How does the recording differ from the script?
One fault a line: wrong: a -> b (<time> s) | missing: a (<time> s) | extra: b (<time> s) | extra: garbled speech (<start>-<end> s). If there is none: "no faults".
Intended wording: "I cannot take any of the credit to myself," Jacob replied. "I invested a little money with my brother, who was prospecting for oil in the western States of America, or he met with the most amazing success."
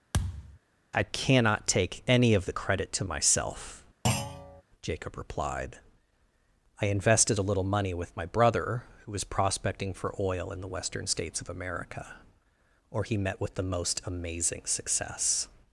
no faults